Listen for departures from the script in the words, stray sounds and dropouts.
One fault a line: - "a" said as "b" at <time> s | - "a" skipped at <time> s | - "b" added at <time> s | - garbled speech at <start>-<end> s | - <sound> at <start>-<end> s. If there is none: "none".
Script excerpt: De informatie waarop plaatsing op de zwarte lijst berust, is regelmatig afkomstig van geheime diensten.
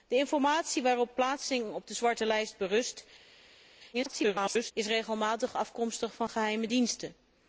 - garbled speech at 3.9-4.7 s